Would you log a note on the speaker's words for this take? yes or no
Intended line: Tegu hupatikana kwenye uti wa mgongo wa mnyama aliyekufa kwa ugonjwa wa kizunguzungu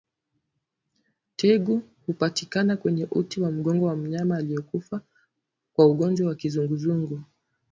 no